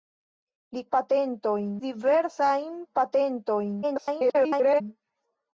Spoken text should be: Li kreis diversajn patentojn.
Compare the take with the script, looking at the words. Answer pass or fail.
fail